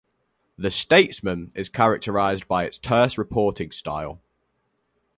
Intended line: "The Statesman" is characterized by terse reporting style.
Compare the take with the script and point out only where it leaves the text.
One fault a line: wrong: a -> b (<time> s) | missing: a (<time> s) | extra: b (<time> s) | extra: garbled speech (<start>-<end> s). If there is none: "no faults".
extra: its (2.6 s)